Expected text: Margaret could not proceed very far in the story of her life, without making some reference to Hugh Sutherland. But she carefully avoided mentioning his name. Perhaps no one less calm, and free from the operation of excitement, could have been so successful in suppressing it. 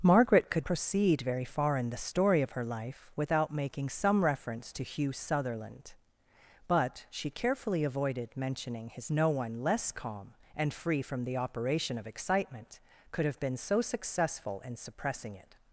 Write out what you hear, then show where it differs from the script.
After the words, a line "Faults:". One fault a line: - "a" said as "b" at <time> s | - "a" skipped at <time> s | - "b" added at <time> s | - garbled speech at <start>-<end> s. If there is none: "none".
Margaret could proceed very far in the story of her life, without making some reference to Hugh Sutherland. But she carefully avoided mentioning his no one less calm, and free from the operation of excitement, could have been so successful in suppressing it.
Faults:
- "not" skipped at 0.7 s
- "name Perhaps" skipped at 9.1 s